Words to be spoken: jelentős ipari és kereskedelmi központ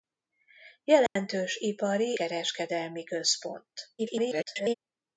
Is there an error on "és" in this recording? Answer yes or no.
yes